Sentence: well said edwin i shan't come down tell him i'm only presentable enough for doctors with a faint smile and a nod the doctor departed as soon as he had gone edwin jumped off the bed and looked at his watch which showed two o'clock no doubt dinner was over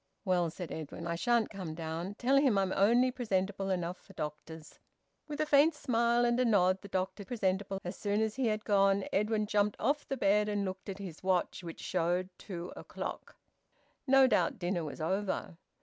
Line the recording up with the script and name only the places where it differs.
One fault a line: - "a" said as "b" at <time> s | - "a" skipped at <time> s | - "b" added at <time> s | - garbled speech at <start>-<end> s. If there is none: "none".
- "departed" said as "presentable" at 7.2 s